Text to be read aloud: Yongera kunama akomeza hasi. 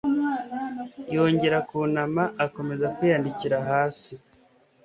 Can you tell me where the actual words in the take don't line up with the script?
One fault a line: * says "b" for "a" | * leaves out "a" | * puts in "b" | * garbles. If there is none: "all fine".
* puts in "kwiyandikira"